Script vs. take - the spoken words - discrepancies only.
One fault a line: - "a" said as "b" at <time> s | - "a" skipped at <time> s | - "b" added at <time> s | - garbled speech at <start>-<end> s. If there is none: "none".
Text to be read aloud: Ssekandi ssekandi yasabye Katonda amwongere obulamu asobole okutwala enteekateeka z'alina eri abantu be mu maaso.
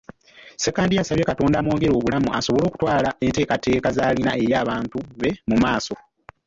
- "ssekandi" skipped at 0.9 s